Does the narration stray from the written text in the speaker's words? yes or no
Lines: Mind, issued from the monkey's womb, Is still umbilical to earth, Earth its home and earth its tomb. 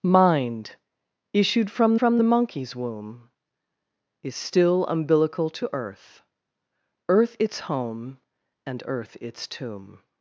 yes